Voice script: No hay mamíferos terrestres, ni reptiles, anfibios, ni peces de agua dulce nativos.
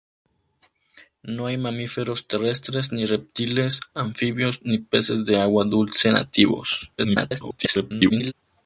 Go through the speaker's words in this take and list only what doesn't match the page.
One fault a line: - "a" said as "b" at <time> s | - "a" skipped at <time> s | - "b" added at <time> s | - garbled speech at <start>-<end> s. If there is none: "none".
- garbled speech at 7.0-8.3 s